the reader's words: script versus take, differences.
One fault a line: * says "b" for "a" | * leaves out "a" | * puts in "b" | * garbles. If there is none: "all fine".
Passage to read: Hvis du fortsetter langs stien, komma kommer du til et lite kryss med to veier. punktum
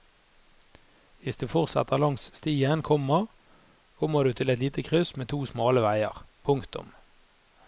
* puts in "smale"